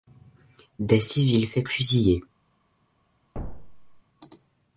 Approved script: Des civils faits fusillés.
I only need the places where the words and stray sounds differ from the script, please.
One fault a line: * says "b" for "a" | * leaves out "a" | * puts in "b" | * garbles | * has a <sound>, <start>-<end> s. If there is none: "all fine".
* has a thud, 3.3-4.0 s